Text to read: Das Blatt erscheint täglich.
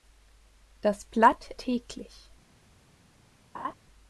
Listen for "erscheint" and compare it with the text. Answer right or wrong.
wrong